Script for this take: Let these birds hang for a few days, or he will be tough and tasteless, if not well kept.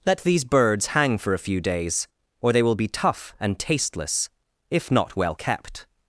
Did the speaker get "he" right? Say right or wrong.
wrong